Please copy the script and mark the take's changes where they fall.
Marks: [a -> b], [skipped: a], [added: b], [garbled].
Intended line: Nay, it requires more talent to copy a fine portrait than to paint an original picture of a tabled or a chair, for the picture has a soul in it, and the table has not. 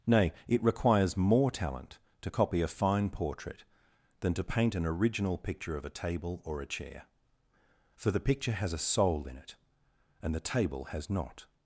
Nay, it requires more talent to copy a fine portrait than to paint an original picture of a [tabled -> table] or a chair, for the picture has a soul in it, and the table has not.